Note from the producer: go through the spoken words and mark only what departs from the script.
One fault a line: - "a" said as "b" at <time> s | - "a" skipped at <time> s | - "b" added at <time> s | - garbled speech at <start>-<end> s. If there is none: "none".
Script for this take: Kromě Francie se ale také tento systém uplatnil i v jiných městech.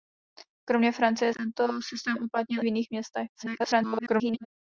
- "se ale také" skipped at 1.3 s
- "i" skipped at 2.6 s
- garbled speech at 3.3-4.5 s